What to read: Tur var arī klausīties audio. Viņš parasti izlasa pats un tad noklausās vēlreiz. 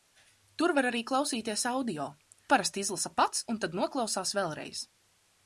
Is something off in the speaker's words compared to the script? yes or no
yes